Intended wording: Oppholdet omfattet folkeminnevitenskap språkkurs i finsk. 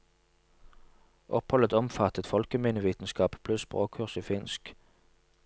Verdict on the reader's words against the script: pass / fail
fail